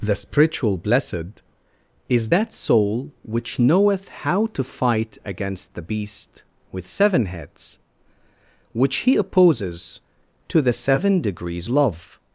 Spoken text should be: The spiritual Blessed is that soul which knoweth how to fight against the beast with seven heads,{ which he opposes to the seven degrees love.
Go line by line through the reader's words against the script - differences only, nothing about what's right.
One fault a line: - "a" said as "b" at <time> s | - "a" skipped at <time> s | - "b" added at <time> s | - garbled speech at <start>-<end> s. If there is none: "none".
none